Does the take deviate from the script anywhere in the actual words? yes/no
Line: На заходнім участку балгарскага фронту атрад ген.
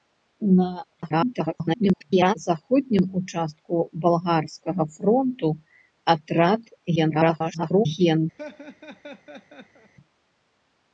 yes